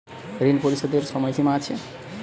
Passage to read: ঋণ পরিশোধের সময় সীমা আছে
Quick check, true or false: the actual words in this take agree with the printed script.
true